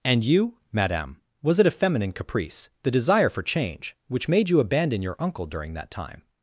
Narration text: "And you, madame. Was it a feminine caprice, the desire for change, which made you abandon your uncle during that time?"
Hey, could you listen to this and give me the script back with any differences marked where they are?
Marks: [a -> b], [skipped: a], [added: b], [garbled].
"And you, madame. Was it a feminine caprice, the desire for change, which made you abandon your uncle during that time?"